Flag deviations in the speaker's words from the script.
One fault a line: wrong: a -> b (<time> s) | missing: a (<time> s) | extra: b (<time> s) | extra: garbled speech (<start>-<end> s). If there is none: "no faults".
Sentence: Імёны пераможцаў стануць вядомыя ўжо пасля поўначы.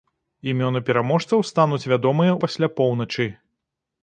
missing: ўжо (2.3 s)